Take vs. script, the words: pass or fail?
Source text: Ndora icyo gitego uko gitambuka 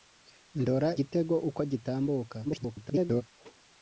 fail